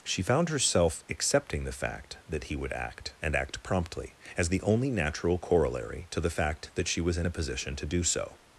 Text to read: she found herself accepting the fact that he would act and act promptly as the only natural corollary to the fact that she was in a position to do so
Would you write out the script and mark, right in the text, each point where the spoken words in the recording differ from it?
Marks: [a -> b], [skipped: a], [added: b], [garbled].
she found herself accepting the fact that he would act and act promptly as the only natural corollary to the fact that she was in a position to do so